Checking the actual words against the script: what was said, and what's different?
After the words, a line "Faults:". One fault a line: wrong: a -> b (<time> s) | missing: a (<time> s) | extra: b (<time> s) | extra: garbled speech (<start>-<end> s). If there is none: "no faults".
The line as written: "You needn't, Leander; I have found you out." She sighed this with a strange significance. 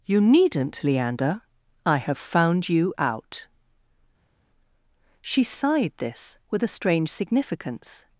"You needn't, Leander; I have found you out." She sighed this with a strange significance.
Faults:
no faults